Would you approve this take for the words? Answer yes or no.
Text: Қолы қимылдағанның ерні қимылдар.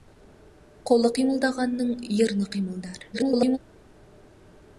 no